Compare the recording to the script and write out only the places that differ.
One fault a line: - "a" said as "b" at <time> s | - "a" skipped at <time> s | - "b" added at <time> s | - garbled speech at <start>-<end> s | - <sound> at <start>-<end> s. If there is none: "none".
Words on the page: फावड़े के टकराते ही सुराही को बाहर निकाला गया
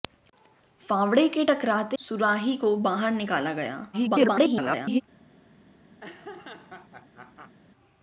- "ही" skipped at 2.0 s
- garbled speech at 3.9-5.0 s
- laugh at 6.0-7.5 s